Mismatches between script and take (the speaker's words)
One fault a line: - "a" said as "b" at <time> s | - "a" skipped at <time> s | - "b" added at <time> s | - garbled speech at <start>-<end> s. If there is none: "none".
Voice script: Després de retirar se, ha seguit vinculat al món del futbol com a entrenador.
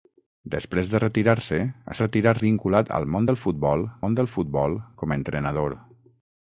- "seguit" said as "retirar" at 2.0 s
- "món del futbol" added at 4.1 s